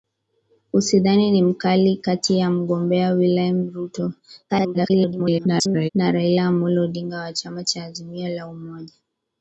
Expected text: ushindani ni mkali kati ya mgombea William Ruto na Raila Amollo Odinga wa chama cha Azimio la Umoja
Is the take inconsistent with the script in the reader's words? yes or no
yes